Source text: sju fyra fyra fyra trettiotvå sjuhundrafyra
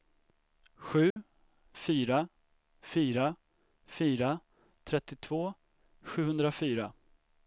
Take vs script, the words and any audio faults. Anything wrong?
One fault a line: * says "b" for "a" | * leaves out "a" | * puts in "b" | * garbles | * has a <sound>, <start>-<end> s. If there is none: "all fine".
* has a dropout, 1.1-1.2 s